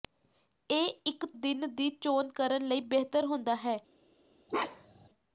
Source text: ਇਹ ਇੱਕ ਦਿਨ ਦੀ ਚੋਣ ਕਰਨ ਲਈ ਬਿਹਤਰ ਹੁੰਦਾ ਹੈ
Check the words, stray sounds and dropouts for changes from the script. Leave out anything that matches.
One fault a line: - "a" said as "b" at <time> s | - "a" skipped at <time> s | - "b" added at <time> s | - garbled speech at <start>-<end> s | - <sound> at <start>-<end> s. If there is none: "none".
- bark at 4.5-5.1 s